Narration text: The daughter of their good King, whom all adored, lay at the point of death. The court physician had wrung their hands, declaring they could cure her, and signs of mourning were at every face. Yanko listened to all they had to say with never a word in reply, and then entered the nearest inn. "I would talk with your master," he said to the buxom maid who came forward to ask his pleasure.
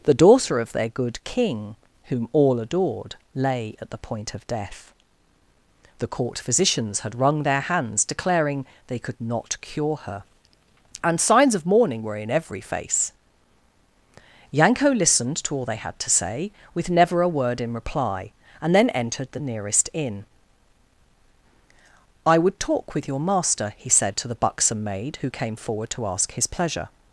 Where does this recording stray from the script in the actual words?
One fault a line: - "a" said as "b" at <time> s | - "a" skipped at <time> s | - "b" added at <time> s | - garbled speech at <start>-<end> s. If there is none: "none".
- "physician" said as "physicians" at 6.4 s
- "not" added at 9.2 s
- "at" said as "in" at 12.2 s